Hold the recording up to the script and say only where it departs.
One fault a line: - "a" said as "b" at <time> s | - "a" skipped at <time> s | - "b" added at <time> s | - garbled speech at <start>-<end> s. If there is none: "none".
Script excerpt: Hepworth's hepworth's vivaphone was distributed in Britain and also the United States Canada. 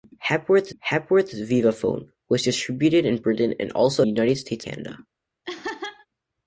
none